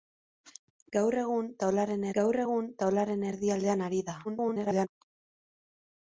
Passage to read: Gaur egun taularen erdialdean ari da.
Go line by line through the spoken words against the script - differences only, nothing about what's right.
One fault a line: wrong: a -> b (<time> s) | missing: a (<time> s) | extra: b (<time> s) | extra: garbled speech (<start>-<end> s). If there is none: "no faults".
extra: gaur egun taularen (2.2 s)
extra: garbled speech (4.2-4.9 s)